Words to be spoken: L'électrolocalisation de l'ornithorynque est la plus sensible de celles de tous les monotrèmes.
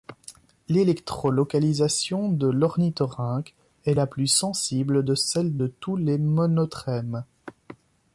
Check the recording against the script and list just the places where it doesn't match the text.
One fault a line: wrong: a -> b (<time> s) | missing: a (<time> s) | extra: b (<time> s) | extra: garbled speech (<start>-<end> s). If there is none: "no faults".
no faults